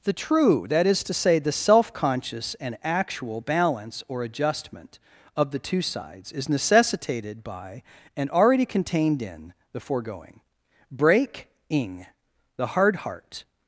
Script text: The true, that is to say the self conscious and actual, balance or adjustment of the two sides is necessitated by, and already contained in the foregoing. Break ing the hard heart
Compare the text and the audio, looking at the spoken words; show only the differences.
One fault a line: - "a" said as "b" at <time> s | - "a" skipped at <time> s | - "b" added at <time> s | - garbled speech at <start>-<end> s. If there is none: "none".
none